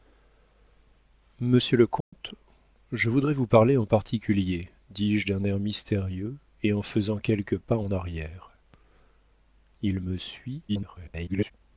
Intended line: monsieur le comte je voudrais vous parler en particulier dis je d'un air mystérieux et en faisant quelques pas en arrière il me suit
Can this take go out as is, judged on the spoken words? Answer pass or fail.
fail